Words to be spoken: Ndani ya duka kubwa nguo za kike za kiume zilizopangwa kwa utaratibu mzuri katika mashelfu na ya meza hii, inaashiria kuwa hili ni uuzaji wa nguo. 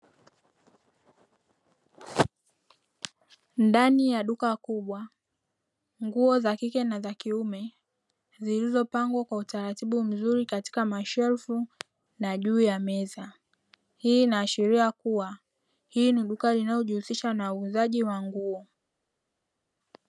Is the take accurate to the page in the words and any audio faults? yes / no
no